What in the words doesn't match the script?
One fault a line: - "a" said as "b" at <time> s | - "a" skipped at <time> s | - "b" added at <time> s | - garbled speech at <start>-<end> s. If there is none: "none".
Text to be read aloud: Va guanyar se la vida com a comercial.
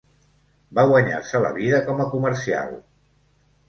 none